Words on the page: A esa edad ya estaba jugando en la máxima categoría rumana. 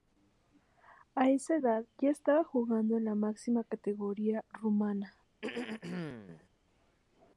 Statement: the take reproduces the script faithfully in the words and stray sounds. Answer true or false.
false